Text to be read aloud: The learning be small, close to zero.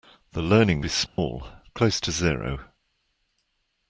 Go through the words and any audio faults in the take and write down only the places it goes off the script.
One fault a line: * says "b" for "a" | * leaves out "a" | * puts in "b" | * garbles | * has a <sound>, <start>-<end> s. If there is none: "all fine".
* has a dropout, 1.1-1.2 s